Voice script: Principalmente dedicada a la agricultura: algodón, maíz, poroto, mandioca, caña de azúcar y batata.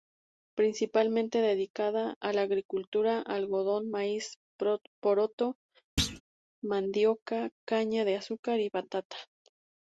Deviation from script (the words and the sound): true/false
true